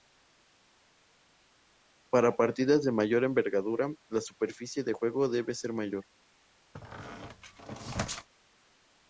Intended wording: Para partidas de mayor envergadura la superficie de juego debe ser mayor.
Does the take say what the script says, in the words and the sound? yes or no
no